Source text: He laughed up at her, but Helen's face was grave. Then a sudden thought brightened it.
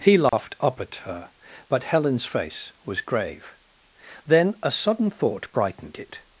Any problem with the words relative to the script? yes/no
no